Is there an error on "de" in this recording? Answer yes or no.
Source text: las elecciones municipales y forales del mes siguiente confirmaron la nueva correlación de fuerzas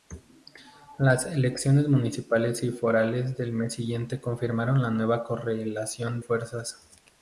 yes